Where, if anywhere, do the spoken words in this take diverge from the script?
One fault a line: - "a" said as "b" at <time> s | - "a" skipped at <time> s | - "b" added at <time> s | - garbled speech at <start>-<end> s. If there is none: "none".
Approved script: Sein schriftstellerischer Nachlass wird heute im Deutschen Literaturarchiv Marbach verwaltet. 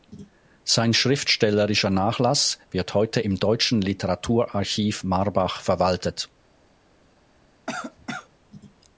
none